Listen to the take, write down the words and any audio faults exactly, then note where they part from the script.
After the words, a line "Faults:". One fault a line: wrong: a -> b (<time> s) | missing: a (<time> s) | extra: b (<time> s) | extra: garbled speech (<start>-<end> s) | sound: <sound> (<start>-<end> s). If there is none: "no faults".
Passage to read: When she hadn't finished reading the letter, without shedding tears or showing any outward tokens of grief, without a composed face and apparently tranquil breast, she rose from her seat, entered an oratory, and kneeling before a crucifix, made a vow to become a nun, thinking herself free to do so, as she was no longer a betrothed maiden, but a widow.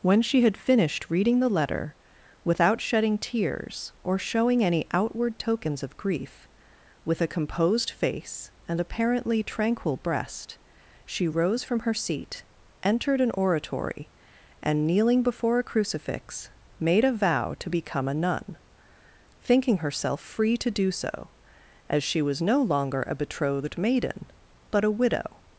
When she had finished reading the letter, without shedding tears or showing any outward tokens of grief, with a composed face and apparently tranquil breast, she rose from her seat, entered an oratory, and kneeling before a crucifix, made a vow to become a nun, thinking herself free to do so, as she was no longer a betrothed maiden, but a widow.
Faults:
wrong: hadn't -> had (0.4 s)
wrong: without -> with (7.0 s)